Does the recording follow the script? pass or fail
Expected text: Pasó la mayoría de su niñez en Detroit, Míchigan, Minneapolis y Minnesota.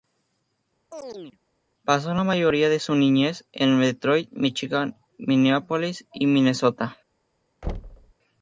pass